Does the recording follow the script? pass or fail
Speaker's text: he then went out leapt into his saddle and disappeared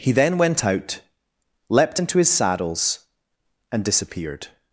fail